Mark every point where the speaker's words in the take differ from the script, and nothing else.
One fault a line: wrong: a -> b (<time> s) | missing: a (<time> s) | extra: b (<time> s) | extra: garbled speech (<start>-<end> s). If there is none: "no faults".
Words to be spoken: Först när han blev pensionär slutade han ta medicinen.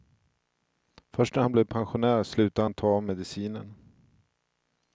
no faults